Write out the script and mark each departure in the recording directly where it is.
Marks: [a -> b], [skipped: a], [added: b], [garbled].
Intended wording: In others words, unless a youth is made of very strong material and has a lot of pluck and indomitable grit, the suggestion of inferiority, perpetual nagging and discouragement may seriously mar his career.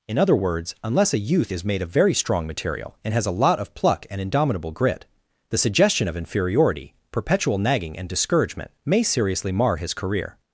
In [others -> other] words, unless a youth is made of very strong material and has a lot of pluck and indomitable grit, the suggestion of inferiority, perpetual nagging and discouragement may seriously mar his career.